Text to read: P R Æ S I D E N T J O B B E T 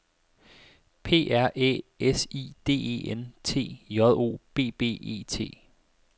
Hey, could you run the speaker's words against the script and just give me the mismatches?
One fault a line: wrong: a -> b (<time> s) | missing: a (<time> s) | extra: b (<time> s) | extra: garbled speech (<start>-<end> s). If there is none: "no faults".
no faults